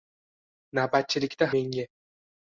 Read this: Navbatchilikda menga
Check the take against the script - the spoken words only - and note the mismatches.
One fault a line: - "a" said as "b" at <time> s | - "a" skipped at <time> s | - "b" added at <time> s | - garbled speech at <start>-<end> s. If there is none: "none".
none